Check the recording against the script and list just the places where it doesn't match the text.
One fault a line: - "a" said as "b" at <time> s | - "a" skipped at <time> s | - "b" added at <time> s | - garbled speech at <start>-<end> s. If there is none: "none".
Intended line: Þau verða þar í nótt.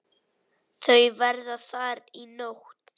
none